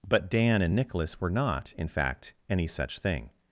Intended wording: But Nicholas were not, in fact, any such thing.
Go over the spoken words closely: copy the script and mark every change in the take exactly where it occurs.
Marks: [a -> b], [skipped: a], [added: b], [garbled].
But [added: Dan and] Nicholas were not, in fact, any such thing.